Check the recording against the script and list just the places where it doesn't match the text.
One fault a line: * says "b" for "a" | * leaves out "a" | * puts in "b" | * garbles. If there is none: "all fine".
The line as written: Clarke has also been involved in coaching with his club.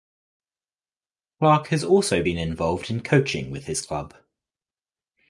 all fine